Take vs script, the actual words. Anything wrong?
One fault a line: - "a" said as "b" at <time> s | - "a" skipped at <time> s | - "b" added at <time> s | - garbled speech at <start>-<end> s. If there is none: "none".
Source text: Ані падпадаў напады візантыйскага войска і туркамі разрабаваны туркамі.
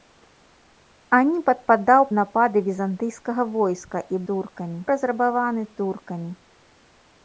none